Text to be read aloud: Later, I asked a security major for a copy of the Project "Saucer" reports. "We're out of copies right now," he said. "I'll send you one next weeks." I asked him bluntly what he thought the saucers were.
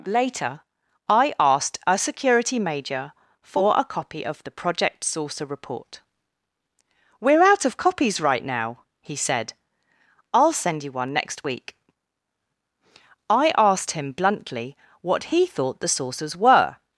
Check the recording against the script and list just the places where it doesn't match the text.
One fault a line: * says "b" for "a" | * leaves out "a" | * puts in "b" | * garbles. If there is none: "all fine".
* says "report" for "reports"
* says "week" for "weeks"